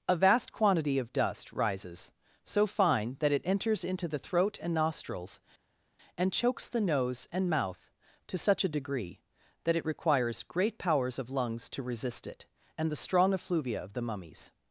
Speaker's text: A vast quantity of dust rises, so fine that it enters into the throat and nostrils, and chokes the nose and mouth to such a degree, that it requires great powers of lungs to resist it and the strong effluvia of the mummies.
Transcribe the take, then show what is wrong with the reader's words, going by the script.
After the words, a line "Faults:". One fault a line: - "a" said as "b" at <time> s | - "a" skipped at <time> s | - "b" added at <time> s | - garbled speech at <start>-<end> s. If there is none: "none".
A vast quantity of dust rises, so fine that it enters into the throat and nostrils, and chokes the nose and mouth to such a degree, that it requires great powers of lungs to resist it and the strong effluvia of the mummies.
Faults:
none